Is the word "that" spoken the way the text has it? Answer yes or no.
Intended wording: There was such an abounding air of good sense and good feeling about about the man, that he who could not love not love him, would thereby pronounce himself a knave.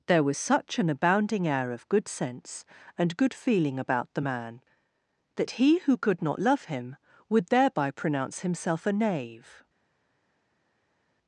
yes